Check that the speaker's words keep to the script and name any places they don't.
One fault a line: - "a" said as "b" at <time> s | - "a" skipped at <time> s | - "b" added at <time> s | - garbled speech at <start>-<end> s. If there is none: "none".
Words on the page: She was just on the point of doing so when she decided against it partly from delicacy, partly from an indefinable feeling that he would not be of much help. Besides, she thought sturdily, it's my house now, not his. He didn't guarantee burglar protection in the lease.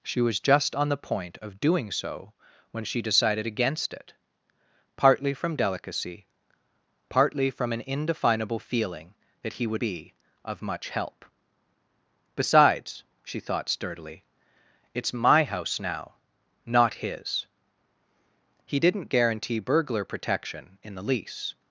- "not" skipped at 9.8 s